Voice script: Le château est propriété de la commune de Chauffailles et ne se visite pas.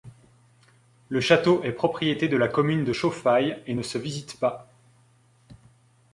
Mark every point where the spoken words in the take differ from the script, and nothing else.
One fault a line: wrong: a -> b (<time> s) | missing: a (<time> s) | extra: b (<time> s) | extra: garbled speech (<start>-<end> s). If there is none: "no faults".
no faults